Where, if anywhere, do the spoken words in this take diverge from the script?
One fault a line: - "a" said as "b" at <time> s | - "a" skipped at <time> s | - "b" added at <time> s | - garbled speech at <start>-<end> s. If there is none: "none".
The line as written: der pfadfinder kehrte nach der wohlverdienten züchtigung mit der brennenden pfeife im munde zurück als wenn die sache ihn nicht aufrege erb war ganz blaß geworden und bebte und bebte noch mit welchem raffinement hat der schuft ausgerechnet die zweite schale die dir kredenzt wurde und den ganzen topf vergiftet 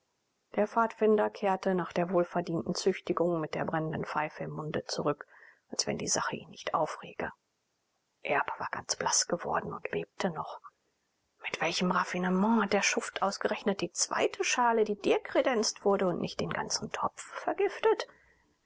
- "und bebte" skipped at 10.3 s
- "nicht" added at 16.2 s